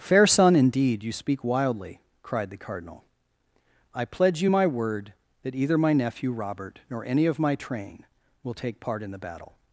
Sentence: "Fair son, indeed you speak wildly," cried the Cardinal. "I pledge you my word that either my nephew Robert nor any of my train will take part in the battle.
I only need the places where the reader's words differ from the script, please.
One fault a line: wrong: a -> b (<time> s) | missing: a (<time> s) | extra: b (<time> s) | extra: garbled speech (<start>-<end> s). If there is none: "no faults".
no faults